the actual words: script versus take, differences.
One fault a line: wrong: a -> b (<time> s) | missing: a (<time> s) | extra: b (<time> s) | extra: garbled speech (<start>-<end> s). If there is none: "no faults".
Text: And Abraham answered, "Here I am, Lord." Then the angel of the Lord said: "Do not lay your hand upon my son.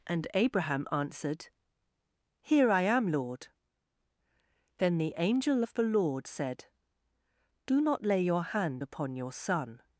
wrong: my -> your (9.2 s)